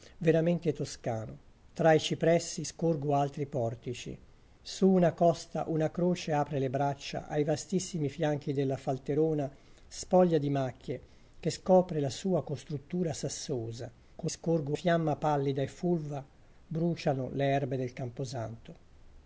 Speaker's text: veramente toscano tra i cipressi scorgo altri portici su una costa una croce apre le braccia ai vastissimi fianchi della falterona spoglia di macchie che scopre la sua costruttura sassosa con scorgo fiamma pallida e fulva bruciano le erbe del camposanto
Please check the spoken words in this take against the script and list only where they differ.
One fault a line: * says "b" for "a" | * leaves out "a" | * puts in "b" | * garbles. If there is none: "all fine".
all fine